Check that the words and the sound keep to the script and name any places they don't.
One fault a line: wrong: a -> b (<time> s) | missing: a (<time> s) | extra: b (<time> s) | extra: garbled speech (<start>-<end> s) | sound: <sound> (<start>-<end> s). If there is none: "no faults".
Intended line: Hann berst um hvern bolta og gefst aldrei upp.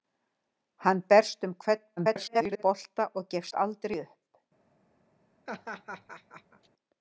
extra: garbled speech (2.0-2.6 s)
sound: laugh (5.5-6.7 s)